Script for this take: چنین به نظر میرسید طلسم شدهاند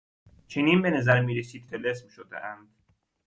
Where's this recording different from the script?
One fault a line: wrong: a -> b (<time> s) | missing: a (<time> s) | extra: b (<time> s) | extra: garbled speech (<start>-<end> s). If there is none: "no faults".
no faults